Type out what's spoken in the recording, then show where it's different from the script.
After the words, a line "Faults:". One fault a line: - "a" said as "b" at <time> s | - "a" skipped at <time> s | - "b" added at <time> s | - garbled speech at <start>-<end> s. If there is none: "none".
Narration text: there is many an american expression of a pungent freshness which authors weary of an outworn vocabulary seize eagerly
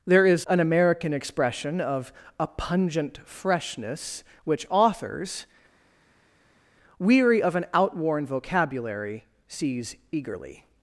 there is an american expression of a pungent freshness which authors weary of an outworn vocabulary seize eagerly
Faults:
- "many" skipped at 0.5 s